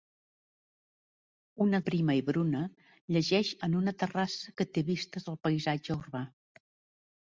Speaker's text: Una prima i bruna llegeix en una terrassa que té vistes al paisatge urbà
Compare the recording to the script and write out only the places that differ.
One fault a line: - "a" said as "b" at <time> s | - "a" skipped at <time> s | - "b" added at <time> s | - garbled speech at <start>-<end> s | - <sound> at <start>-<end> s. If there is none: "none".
none